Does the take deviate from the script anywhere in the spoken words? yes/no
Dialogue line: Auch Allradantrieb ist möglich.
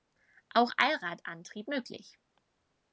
yes